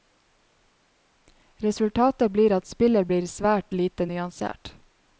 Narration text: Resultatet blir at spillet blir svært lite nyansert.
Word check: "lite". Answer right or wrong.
right